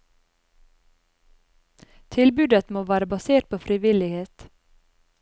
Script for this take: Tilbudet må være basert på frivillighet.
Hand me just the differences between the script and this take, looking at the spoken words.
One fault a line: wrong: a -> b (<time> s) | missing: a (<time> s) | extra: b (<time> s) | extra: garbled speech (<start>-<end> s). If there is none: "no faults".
no faults